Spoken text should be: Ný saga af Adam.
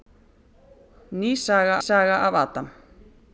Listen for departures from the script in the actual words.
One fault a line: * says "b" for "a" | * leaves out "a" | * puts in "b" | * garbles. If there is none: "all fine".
* puts in "saga"